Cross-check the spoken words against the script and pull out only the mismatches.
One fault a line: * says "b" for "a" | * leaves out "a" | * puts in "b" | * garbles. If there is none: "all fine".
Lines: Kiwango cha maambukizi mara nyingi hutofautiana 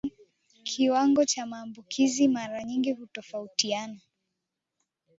all fine